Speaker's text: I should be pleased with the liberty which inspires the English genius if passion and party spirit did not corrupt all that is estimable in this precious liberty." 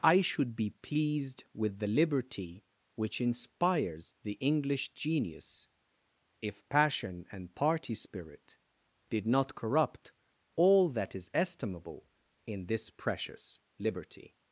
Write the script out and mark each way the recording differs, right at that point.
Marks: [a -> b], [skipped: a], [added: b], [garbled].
I should be pleased with the liberty which inspires the English genius if passion and party spirit did not corrupt all that is estimable in this precious liberty."